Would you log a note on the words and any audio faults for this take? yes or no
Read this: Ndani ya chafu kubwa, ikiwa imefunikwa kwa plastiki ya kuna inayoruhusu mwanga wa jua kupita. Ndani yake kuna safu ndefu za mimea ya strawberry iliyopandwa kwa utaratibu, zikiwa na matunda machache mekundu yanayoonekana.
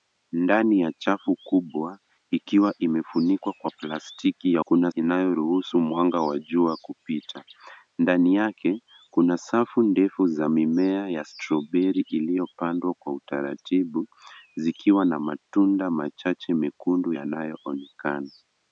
no